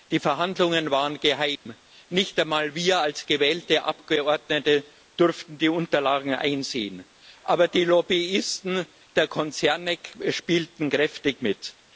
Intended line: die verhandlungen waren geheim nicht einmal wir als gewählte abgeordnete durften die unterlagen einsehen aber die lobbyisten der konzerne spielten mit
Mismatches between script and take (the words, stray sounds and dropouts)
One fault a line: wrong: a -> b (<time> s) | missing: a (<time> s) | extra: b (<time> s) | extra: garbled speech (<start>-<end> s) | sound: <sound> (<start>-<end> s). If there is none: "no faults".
sound: dropout (1.6-1.7 s)
extra: kräftig (10.9 s)